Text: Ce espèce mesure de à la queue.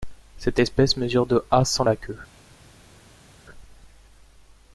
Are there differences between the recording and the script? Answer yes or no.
yes